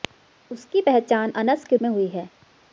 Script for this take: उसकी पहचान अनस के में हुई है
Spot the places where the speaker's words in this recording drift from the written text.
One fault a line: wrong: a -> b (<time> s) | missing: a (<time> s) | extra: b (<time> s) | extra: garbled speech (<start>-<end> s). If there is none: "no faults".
no faults